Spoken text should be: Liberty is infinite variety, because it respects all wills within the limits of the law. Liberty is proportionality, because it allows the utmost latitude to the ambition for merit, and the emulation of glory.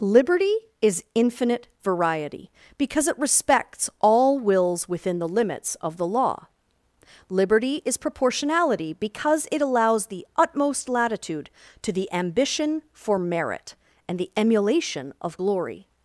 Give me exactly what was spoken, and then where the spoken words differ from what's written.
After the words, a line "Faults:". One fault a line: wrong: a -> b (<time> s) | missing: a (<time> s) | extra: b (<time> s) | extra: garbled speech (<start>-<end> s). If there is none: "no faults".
Liberty is infinite variety, because it respects all wills within the limits of the law. Liberty is proportionality, because it allows the utmost latitude to the ambition for merit, and the emulation of glory.
Faults:
no faults